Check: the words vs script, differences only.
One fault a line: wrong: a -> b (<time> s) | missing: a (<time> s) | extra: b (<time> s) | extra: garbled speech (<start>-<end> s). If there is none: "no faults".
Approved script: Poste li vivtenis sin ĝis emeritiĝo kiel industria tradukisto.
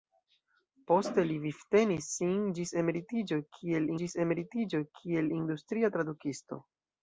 extra: ĝis emeritiĝo kiel (4.0 s)